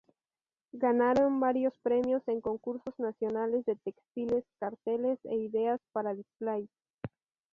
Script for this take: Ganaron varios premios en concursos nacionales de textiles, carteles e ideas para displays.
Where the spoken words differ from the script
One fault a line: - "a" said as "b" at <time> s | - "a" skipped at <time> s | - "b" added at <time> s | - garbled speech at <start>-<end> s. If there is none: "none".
none